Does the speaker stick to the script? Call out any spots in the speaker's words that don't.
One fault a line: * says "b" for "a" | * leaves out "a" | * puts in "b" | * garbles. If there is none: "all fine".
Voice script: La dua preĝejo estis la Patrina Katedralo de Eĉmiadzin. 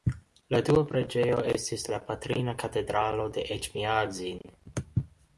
all fine